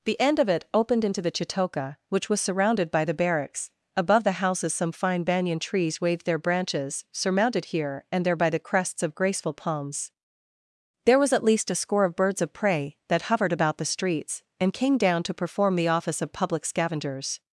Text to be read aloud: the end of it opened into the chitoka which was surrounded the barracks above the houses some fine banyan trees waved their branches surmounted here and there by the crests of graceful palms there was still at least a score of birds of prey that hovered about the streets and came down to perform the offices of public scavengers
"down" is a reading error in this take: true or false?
false